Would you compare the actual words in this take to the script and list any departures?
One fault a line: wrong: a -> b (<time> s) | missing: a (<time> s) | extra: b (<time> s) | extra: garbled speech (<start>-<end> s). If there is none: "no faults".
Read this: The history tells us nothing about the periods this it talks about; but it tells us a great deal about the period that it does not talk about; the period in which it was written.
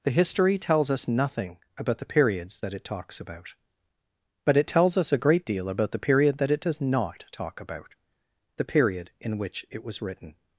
wrong: this -> that (2.6 s)